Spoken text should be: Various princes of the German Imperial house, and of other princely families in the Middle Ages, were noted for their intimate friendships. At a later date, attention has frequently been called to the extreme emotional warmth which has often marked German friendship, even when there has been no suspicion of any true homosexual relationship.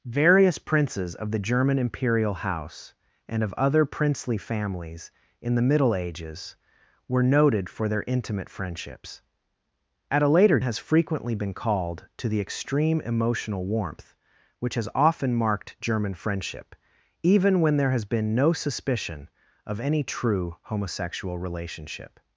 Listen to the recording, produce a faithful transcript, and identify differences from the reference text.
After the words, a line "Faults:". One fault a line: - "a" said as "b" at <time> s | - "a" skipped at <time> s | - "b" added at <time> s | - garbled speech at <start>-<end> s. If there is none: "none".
Various princes of the German Imperial house, and of other princely families in the Middle Ages, were noted for their intimate friendships. At a later has frequently been called to the extreme emotional warmth which has often marked German friendship, even when there has been no suspicion of any true homosexual relationship.
Faults:
- "date attention" skipped at 10.6 s